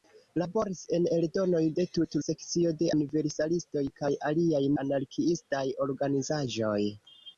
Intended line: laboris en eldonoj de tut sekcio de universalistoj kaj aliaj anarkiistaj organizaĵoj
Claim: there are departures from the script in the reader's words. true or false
false